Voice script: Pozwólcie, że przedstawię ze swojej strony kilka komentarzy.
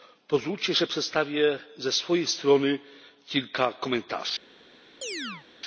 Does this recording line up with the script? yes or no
yes